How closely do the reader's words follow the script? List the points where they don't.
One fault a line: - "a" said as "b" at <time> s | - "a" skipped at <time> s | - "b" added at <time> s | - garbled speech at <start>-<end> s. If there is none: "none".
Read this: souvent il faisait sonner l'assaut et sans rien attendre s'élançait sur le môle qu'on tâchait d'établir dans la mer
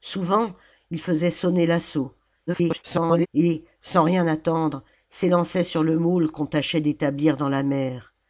- garbled speech at 2.5-3.3 s